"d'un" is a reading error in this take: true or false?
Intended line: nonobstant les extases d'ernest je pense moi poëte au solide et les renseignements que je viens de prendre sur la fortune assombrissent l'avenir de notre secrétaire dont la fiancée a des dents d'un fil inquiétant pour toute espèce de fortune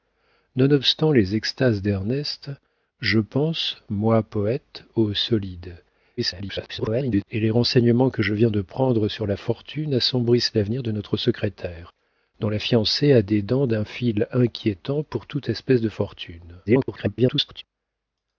false